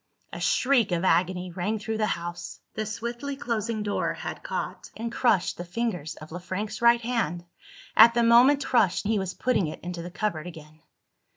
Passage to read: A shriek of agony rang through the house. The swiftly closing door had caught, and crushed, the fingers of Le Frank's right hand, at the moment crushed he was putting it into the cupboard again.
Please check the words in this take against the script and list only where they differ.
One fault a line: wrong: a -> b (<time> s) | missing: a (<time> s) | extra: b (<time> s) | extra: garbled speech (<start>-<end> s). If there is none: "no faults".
no faults